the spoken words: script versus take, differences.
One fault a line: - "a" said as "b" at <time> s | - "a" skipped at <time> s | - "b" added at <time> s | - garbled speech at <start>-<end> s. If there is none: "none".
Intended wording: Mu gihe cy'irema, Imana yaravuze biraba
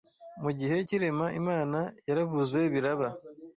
none